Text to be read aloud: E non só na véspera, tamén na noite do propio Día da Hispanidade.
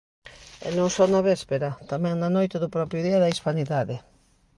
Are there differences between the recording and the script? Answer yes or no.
no